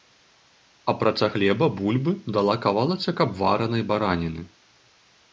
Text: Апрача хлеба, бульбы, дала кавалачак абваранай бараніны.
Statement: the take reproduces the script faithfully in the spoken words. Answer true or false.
true